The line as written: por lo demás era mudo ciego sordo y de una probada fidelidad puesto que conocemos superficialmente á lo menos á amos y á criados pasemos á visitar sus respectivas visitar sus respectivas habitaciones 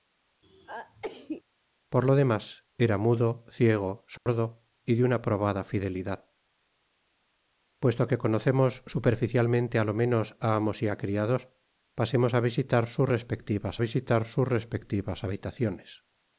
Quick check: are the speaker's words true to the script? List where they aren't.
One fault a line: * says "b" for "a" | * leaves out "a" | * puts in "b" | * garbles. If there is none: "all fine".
all fine